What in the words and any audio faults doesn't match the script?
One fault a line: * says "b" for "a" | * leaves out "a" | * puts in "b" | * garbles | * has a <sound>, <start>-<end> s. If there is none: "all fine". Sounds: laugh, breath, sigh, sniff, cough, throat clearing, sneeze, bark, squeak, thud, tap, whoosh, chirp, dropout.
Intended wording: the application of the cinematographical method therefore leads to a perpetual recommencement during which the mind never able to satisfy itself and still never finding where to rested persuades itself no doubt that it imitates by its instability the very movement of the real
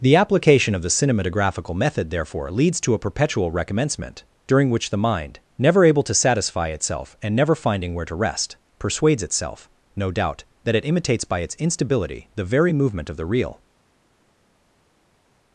* leaves out "still"
* says "rest" for "rested"